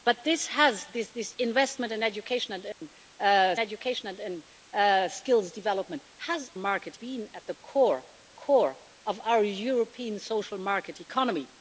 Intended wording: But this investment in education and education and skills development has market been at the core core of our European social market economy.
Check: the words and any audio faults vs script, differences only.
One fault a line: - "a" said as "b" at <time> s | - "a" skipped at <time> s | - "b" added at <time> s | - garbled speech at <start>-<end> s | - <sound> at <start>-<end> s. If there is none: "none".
- dropout at 2.7-2.8 s